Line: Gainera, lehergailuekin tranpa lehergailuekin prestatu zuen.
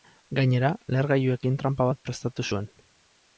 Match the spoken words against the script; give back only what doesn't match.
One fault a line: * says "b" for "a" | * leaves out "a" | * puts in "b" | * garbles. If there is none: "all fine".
* says "bat" for "lehergailuekin"